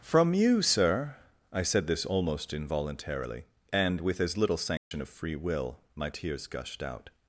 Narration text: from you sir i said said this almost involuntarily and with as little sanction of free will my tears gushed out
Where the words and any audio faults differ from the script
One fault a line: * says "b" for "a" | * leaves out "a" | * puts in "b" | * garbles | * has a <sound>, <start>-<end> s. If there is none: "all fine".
* leaves out "said"
* has a dropout, 4.8-4.9 s